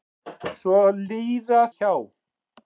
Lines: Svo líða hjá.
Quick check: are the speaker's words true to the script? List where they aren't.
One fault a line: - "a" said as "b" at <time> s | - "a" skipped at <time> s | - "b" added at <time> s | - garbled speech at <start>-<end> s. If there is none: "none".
none